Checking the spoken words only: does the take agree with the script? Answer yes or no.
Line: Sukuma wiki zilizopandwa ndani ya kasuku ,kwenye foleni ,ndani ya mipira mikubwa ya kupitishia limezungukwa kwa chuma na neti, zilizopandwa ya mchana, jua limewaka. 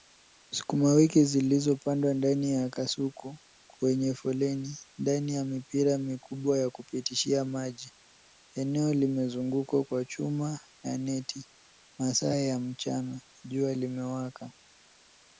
no